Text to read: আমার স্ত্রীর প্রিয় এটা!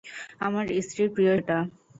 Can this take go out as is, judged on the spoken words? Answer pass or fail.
pass